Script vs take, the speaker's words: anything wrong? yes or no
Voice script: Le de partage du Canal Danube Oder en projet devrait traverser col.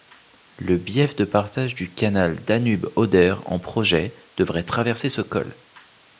yes